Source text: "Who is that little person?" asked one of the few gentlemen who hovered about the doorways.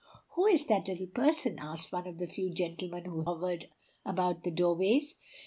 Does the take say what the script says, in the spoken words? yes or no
yes